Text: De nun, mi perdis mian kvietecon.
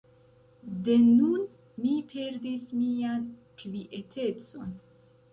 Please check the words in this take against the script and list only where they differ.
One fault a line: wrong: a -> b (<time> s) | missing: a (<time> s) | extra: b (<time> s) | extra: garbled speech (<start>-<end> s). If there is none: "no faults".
no faults